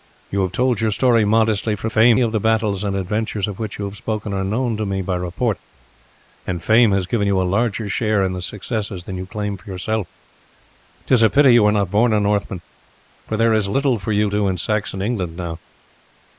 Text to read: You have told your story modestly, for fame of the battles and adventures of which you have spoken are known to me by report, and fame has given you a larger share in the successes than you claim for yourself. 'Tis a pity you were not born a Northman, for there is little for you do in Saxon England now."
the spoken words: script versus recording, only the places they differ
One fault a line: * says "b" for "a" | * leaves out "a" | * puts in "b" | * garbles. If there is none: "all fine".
all fine